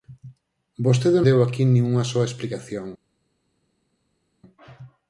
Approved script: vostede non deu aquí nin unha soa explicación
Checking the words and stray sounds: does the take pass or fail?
fail